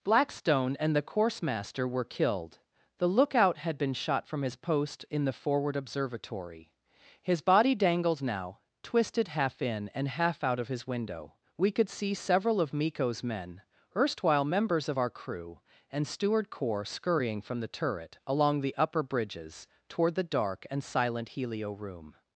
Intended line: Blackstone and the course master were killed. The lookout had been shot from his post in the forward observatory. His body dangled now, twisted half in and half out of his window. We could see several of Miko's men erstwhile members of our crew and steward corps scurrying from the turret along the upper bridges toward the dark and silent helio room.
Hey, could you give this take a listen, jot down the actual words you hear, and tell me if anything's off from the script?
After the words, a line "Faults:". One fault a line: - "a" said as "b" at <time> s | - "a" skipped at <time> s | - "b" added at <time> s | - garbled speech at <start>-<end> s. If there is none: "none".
Blackstone and the course master were killed. The lookout had been shot from his post in the forward observatory. His body dangled now, twisted half in and half out of his window. We could see several of Miko's men erstwhile members of our crew and steward corps scurrying from the turret along the upper bridges toward the dark and silent helio room.
Faults:
none